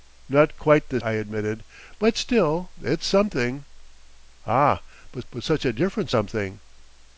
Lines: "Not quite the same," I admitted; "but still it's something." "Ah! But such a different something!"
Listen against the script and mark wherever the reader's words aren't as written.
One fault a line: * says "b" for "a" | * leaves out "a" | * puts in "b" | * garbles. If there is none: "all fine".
* leaves out "same"
* puts in "but"